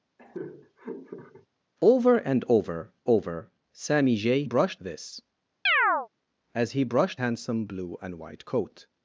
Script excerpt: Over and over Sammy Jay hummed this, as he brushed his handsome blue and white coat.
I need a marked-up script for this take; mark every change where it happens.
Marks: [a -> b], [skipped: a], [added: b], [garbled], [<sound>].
[laugh] Over and over [added: over] Sammy Jay [hummed -> brushed] this, [chirp] as he brushed [skipped: his] handsome blue and white coat.